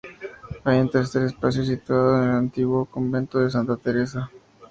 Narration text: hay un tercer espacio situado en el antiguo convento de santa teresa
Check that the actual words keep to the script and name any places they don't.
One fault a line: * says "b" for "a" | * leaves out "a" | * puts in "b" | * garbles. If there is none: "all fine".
all fine